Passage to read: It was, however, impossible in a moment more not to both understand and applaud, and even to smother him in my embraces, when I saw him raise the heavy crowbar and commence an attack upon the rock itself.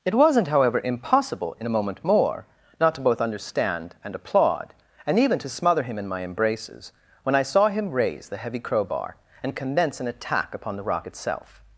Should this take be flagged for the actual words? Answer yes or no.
yes